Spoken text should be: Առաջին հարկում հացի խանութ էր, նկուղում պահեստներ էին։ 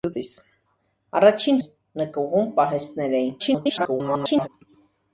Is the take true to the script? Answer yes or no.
no